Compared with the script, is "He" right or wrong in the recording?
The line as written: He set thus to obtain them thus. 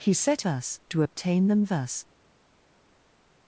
right